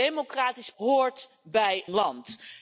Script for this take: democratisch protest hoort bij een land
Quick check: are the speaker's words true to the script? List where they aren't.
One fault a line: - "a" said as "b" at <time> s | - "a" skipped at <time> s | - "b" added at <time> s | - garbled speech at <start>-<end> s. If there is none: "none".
- "protest" skipped at 0.7 s
- "een" skipped at 1.8 s